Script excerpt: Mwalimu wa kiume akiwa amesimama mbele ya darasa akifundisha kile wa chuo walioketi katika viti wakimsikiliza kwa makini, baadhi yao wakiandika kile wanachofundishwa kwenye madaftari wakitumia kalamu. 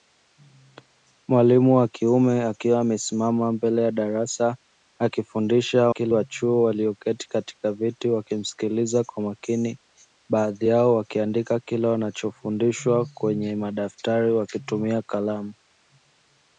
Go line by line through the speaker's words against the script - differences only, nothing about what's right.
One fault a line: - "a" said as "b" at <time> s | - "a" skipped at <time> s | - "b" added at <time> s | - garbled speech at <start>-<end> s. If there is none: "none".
none